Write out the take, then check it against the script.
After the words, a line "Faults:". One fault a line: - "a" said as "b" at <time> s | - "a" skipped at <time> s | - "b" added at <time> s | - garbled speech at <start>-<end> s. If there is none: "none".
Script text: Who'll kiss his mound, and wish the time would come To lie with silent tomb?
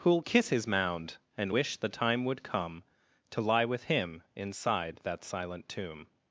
Who'll kiss his mound, and wish the time would come To lie with him inside that silent tomb?
Faults:
- "him inside that" added at 3.8 s